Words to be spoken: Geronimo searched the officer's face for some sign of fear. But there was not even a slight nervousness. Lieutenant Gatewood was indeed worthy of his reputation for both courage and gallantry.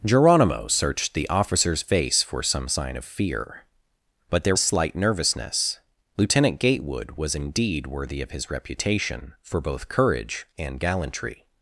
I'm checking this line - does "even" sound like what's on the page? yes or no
no